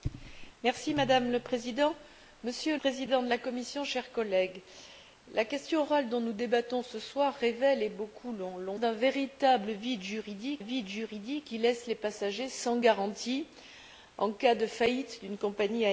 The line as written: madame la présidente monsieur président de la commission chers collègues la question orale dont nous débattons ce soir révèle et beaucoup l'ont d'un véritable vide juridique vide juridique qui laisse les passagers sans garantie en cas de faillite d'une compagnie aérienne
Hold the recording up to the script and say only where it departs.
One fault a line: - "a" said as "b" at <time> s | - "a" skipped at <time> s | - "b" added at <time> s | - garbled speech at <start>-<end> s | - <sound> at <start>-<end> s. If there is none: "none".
none